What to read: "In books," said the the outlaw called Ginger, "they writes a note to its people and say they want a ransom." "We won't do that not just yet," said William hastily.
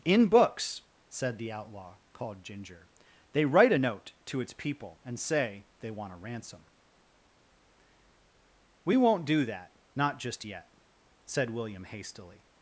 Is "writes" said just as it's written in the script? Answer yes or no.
no